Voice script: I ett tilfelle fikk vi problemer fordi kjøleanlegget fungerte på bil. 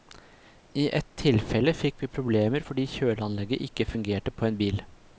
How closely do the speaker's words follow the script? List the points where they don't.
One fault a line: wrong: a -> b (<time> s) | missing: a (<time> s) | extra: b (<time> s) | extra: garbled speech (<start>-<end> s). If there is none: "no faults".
extra: ikke (3.7 s)
extra: en (4.5 s)